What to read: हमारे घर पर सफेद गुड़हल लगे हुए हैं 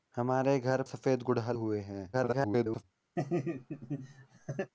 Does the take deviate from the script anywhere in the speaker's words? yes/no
yes